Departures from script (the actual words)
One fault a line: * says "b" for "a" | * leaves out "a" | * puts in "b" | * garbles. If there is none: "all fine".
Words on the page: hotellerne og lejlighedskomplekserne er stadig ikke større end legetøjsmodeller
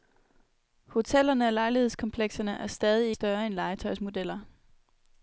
* leaves out "ikke"